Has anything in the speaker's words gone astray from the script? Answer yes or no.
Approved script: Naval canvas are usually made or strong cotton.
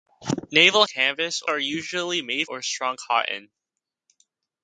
no